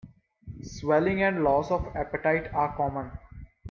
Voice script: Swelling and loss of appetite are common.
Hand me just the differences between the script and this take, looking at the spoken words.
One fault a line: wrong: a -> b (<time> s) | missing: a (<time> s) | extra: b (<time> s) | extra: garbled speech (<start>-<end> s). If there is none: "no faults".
no faults